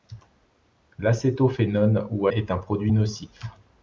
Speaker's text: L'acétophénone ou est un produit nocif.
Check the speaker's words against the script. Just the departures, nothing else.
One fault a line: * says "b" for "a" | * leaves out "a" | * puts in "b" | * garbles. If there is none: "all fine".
all fine